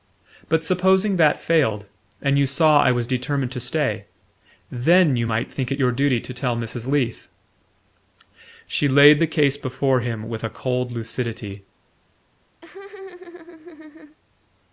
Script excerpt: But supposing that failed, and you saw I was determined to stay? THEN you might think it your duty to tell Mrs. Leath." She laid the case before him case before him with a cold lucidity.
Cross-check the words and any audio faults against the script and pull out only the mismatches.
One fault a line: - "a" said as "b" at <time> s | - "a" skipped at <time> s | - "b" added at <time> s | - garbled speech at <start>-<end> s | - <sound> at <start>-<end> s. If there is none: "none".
- "case before him" skipped at 10.3 s
- laugh at 12.6-14.2 s